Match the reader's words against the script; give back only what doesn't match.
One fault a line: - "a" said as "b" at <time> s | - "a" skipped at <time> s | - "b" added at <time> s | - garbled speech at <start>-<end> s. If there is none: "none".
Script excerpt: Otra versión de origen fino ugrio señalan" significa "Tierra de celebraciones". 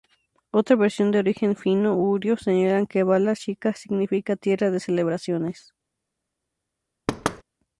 - "que Bala Shika" added at 2.9 s